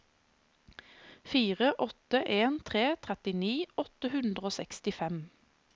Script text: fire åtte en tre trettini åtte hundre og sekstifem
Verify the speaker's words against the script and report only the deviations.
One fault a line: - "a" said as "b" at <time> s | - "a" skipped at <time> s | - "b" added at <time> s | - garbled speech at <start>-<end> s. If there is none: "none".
none